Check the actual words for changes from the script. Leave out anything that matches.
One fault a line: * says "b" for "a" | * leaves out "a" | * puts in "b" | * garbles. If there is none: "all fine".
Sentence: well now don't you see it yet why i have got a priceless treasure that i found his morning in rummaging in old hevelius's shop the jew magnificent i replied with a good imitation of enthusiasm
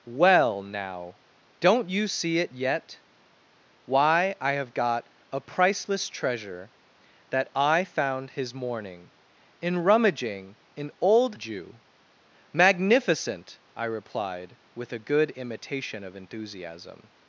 * leaves out "hevelius's shop the"